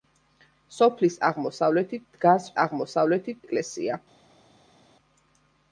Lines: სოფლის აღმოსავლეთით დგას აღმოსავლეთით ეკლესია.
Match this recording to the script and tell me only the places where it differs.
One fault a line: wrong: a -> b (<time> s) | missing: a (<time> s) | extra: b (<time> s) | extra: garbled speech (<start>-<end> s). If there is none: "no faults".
no faults